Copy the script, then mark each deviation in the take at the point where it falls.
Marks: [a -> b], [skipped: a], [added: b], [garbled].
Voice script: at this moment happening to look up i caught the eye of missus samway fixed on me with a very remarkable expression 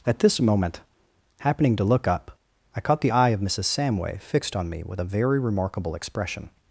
at this moment happening to look up i caught the eye of missus samway fixed on me with a very remarkable expression